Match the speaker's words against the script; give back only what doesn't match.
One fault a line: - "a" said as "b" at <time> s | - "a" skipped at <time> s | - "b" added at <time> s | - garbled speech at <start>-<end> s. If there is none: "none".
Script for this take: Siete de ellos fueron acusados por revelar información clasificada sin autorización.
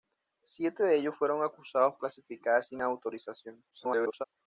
- "por revelar información" skipped at 1.9 s
- garbled speech at 3.7-4.2 s